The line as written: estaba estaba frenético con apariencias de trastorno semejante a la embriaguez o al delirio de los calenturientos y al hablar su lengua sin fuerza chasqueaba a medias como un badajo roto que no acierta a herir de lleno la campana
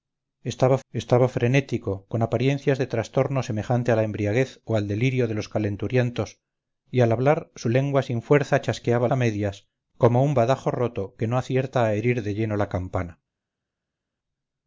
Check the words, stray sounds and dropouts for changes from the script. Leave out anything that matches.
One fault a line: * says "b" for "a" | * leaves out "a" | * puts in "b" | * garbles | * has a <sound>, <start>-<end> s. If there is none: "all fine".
all fine